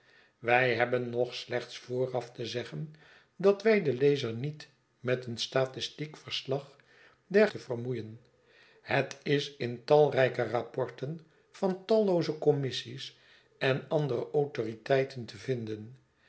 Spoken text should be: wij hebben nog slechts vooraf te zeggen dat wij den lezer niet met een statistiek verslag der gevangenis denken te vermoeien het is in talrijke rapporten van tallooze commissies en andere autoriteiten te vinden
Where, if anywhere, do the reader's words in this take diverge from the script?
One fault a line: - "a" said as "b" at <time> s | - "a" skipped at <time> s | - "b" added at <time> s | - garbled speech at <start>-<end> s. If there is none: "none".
- "gevangenis denken" skipped at 7.5 s